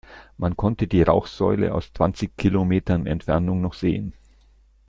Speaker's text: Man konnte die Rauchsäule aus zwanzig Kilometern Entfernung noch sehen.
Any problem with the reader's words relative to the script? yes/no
no